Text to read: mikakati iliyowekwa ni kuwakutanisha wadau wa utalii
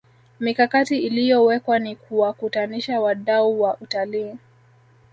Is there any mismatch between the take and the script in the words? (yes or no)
no